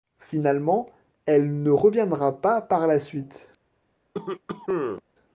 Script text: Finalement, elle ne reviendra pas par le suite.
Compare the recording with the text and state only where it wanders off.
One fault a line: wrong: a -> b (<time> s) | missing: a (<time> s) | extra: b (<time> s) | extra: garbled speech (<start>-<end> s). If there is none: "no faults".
wrong: le -> la (2.9 s)